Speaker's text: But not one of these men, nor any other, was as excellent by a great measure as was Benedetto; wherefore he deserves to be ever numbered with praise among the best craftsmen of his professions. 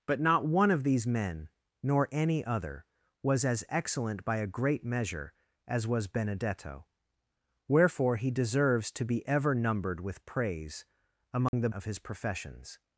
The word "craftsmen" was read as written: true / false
false